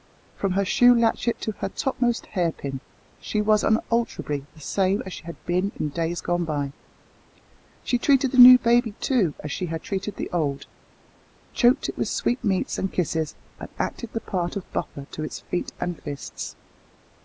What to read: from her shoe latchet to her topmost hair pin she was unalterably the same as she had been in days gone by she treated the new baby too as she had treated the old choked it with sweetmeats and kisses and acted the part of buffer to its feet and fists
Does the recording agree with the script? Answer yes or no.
yes